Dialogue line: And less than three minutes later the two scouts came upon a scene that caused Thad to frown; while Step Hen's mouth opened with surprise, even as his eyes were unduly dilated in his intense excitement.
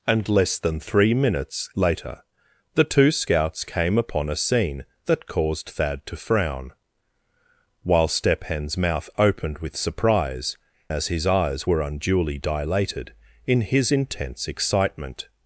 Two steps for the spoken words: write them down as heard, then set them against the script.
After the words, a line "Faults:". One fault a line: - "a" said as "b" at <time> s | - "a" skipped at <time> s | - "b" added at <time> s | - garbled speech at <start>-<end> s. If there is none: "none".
And less than three minutes later the two scouts came upon a scene that caused Thad to frown; while Step Hen's mouth opened with surprise, as his eyes were unduly dilated in his intense excitement.
Faults:
- "even" skipped at 10.6 s